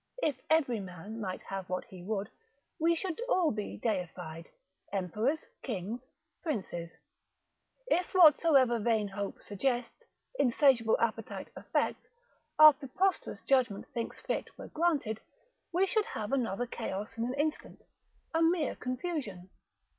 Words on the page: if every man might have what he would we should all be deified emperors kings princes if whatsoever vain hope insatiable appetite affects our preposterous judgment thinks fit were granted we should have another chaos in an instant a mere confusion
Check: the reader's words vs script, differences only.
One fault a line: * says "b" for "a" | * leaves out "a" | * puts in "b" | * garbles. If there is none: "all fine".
* puts in "suggests"